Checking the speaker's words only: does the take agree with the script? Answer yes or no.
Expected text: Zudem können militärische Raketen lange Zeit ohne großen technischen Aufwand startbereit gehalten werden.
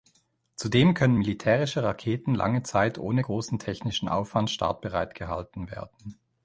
yes